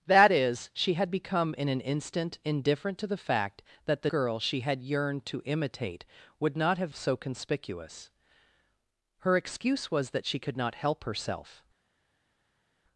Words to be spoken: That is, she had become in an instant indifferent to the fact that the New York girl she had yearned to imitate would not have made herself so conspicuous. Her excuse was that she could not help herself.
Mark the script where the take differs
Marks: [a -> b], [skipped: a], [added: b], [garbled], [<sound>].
That is, she had become in an instant indifferent to the fact that the [skipped: New York] girl she had yearned to imitate would not have [skipped: made herself] so conspicuous. Her excuse was that she could not help herself.